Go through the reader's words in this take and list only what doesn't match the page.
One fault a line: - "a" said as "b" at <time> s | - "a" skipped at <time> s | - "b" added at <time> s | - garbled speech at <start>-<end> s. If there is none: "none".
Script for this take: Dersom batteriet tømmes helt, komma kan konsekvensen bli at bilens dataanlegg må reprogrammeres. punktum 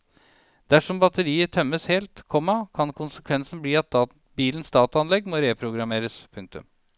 none